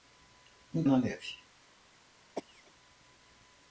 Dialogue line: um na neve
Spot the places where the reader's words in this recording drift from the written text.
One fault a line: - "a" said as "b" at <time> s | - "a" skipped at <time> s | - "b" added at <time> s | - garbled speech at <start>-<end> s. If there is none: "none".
none